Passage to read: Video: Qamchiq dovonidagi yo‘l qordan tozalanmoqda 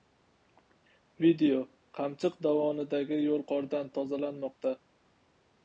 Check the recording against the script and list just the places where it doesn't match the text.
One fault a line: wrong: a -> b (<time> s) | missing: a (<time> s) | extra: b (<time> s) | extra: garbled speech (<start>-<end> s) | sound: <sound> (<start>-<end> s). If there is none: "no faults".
no faults